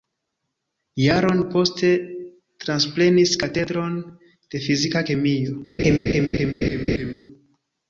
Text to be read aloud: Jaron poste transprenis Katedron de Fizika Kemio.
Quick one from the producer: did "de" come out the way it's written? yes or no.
yes